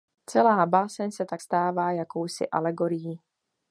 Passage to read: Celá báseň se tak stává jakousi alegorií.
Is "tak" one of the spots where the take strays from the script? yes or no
no